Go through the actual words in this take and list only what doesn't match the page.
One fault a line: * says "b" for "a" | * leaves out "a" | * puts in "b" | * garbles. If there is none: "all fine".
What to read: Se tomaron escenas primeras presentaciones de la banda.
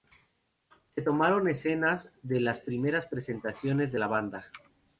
* puts in "de las"